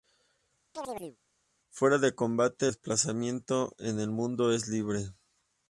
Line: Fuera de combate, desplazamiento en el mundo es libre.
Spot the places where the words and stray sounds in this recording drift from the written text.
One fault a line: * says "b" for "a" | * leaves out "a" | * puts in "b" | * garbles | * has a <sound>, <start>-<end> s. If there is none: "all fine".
* has a chirp, 0.7-1.2 s